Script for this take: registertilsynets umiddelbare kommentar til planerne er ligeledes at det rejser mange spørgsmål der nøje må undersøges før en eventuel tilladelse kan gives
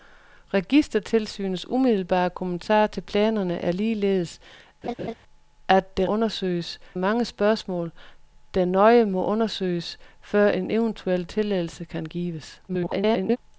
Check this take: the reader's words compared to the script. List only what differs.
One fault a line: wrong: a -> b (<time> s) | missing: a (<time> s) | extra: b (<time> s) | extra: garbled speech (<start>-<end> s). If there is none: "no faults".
wrong: rejser -> undersøges (6.1 s)
extra: garbled speech (12.7-13.4 s)